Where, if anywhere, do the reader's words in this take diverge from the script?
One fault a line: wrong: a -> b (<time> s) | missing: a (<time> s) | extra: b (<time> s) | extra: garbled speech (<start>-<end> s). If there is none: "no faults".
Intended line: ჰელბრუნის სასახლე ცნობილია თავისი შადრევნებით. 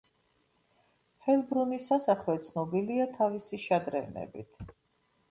no faults